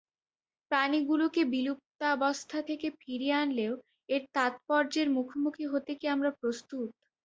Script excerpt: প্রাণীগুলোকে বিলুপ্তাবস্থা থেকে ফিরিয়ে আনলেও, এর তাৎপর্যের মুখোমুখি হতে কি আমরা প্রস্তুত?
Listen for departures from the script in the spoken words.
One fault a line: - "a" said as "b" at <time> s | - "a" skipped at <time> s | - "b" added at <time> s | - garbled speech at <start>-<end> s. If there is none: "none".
none